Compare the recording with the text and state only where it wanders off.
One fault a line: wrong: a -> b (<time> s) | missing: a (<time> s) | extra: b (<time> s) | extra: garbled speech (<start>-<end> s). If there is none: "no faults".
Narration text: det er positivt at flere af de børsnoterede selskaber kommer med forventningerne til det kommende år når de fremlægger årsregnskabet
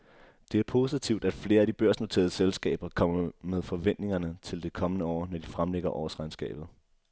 no faults